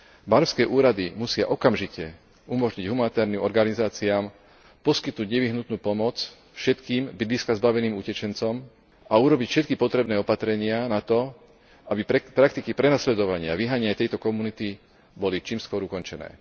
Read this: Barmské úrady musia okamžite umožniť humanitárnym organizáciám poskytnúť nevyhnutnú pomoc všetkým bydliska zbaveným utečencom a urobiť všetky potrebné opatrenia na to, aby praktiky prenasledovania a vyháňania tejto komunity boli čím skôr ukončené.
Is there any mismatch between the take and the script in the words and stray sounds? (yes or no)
no